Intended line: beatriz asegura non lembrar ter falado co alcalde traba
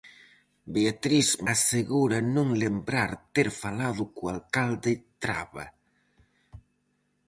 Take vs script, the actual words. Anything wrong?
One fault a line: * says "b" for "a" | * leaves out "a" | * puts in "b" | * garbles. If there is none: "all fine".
all fine